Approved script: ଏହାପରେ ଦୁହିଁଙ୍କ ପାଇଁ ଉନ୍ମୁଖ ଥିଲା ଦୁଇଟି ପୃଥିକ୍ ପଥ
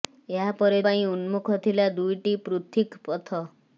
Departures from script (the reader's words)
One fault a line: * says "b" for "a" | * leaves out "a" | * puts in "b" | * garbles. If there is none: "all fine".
* leaves out "ଦୁହିଁଙ୍କ"